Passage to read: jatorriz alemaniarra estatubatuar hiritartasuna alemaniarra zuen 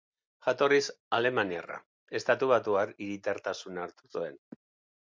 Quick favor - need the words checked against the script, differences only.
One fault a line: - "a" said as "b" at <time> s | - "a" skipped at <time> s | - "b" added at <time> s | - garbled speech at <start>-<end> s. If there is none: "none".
- "alemaniarra" said as "hartu" at 3.9 s